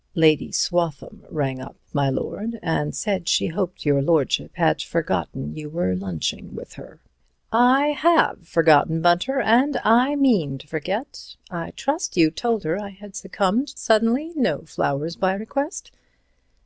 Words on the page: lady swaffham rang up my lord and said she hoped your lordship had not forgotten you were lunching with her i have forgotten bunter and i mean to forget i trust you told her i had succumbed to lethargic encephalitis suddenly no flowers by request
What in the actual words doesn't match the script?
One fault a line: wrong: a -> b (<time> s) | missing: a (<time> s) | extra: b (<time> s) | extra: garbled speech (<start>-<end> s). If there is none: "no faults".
missing: not (4.8 s)
missing: to lethargic encephalitis (13.8 s)